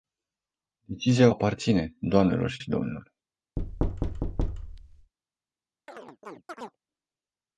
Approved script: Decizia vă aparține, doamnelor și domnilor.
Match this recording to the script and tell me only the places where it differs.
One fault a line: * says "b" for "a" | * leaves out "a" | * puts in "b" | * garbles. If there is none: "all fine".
* leaves out "vă"
* puts in "și"